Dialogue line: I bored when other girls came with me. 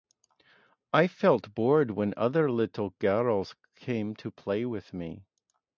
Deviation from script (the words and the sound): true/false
true